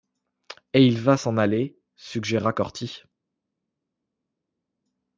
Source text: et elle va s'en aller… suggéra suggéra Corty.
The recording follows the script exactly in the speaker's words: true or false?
false